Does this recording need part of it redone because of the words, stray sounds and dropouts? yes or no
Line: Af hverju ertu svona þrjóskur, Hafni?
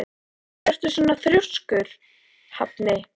no